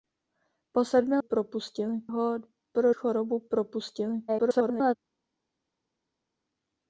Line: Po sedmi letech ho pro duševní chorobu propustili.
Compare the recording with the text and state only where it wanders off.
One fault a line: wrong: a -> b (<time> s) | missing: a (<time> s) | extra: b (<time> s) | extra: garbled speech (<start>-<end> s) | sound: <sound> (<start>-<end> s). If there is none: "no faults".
wrong: letech -> propustili (1.2 s)
missing: duševní (2.9 s)
extra: garbled speech (4.3-5.0 s)